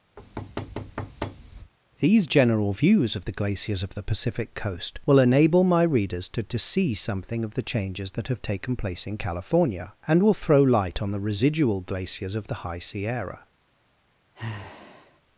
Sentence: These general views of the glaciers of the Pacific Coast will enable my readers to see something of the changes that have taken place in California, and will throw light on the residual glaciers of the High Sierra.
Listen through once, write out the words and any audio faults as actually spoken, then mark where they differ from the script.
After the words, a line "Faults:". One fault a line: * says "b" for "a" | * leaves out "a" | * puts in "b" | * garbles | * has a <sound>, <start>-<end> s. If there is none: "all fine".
These general views of the glaciers of the Pacific Coast will enable my readers to to see something of the changes that have taken place in California, and will throw light on the residual glaciers of the High Sierra.
Faults:
* has a thud, 0.2-1.7 s
* puts in "to"
* has a sigh, 14.3-15.2 s